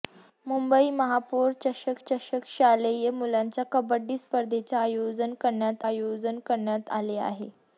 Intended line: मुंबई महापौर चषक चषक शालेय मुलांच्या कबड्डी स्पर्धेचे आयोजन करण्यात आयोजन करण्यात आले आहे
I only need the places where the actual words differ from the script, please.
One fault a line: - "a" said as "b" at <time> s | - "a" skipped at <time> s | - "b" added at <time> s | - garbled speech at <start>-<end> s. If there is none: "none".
none